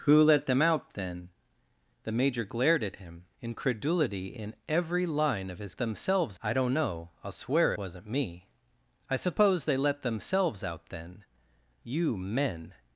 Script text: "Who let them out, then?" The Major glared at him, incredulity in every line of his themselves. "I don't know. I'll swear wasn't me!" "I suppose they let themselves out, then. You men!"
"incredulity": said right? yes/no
yes